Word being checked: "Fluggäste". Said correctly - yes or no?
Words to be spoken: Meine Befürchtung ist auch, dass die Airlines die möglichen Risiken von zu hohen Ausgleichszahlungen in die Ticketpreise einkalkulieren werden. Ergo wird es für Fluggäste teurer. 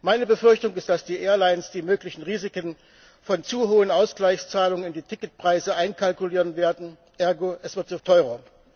no